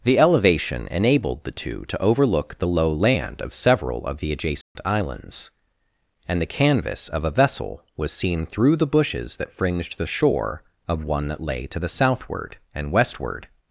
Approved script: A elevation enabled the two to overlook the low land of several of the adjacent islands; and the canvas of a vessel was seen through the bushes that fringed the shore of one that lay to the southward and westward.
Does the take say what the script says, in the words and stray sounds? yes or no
no